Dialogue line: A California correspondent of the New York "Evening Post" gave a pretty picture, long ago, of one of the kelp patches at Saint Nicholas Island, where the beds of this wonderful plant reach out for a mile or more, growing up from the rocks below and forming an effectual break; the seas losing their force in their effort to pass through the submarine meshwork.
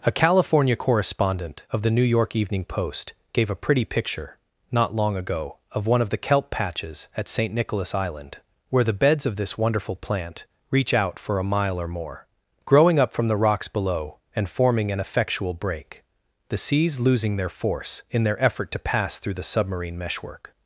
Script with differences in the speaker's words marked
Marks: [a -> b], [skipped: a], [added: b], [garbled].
A California correspondent of the New York "Evening Post" gave a pretty picture, [added: not] long ago, of one of the kelp patches at Saint Nicholas Island, where the beds of this wonderful plant reach out for a mile or more, growing up from the rocks below and forming an effectual break; the seas losing their force in their effort to pass through the submarine meshwork.